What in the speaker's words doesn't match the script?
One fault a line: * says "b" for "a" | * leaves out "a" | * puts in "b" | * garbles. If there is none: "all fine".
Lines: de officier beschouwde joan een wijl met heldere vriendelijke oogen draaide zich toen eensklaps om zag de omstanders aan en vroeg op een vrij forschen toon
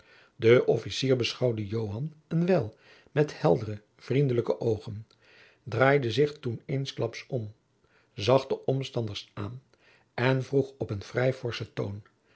all fine